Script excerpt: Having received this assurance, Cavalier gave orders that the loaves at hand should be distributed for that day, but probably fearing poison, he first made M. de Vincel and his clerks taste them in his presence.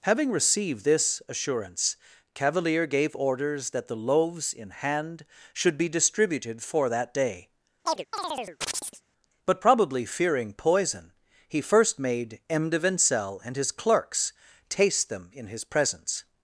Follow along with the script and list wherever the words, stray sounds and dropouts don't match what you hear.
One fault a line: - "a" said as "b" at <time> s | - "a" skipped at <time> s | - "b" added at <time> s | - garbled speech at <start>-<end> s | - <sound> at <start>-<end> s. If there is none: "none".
- "at" said as "in" at 4.5 s
- chirp at 7.9-9.0 s